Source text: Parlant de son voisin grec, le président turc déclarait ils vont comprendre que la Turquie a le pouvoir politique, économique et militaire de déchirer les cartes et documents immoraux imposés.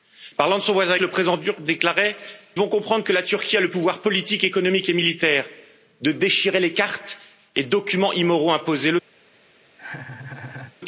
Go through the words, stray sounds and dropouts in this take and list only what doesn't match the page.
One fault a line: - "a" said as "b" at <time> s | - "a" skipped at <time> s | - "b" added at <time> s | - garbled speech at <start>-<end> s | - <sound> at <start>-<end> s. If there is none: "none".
- "grec" skipped at 1.0 s
- "ils" skipped at 2.2 s
- laugh at 9.8-10.8 s